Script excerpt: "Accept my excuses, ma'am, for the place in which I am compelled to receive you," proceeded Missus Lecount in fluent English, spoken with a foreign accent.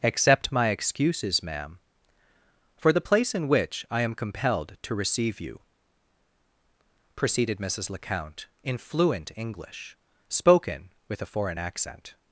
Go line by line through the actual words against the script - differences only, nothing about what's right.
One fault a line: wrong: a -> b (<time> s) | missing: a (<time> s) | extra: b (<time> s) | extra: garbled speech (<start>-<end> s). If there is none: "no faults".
no faults